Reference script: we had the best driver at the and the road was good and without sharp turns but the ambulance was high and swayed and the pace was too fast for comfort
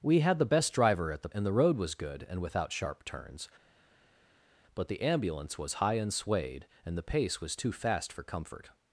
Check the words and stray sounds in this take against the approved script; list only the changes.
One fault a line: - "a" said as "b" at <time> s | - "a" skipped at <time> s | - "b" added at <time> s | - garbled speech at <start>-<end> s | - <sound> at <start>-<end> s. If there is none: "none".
none